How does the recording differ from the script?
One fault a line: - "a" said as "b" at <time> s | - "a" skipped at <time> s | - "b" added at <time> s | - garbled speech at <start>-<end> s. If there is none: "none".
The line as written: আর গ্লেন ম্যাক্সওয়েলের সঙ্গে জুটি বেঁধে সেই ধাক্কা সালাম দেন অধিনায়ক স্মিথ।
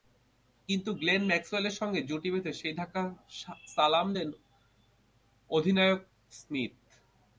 - "আর" said as "কিন্তু" at 0.7 s